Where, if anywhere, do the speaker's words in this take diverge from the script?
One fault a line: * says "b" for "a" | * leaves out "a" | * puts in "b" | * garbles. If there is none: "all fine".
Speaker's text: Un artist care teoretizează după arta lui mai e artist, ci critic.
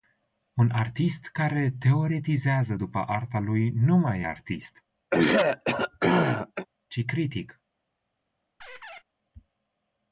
* puts in "nu"